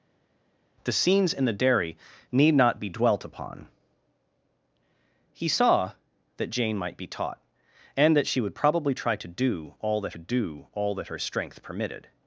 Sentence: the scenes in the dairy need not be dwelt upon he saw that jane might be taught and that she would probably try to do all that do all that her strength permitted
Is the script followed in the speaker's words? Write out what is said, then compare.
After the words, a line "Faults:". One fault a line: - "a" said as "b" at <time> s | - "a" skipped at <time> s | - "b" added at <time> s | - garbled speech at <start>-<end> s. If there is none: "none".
the scenes in the dairy need not be dwelt upon he saw that jane might be taught and that she would probably try to do all that do all that her strength permitted
Faults:
none